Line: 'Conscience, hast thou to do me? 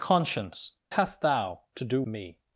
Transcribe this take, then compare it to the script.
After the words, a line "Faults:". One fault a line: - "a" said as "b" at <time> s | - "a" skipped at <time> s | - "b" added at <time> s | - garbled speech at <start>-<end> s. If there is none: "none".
'Conscience, hast thou to do me?
Faults:
none